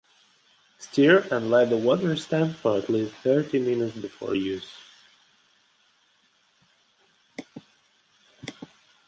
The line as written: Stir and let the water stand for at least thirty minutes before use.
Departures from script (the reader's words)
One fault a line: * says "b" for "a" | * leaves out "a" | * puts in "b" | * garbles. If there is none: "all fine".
all fine